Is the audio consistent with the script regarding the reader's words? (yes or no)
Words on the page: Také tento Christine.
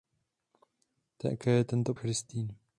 yes